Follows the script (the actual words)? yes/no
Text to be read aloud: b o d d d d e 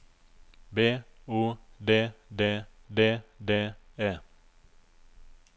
yes